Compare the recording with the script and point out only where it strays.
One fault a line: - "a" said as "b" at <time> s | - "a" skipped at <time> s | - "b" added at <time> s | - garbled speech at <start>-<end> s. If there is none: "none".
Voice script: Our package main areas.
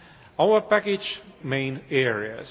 none